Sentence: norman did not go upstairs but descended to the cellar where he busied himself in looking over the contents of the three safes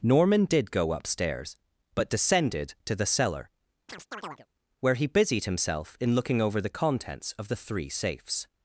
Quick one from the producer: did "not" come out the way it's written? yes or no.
no